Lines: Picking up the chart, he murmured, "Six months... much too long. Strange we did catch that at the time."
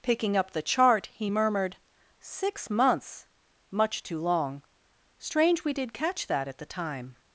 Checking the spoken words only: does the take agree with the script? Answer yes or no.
yes